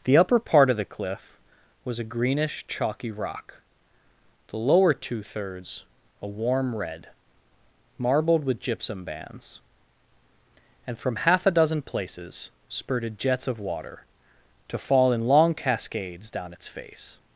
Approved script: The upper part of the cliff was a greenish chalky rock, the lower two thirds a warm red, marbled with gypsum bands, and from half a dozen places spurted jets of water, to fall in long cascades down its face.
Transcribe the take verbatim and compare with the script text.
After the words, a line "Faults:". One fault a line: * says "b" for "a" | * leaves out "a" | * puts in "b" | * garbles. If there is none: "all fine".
The upper part of the cliff was a greenish chalky rock, the lower two thirds a warm red, marbled with gypsum bands, and from half a dozen places spurted jets of water, to fall in long cascades down its face.
Faults:
all fine